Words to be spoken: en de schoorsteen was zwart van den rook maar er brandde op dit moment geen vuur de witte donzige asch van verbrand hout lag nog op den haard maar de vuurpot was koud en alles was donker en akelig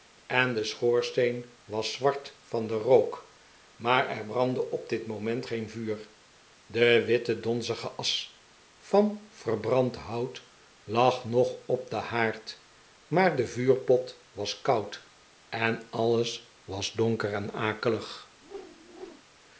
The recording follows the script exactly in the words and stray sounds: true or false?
false